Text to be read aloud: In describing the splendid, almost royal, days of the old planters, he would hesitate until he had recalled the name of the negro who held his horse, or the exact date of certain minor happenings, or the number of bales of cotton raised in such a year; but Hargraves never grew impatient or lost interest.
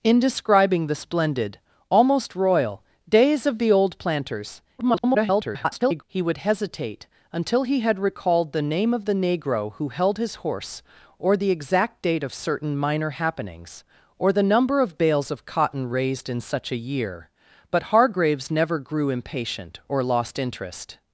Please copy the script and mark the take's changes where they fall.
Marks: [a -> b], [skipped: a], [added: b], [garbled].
In describing the splendid, almost royal, days of the old planters, [garbled] he would hesitate until he had recalled the name of the negro who held his horse, or the exact date of certain minor happenings, or the number of bales of cotton raised in such a year; but Hargraves never grew impatient or lost interest.